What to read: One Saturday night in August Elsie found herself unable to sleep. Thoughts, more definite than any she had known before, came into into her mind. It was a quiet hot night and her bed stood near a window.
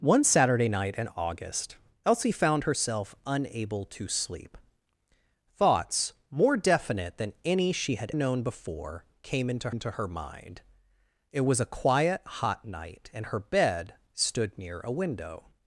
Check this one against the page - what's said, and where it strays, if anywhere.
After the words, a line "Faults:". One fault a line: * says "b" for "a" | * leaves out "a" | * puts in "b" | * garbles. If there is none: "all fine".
One Saturday night in August Elsie found herself unable to sleep. Thoughts, more definite than any she had known before, came into into her mind. It was a quiet hot night and her bed stood near a window.
Faults:
all fine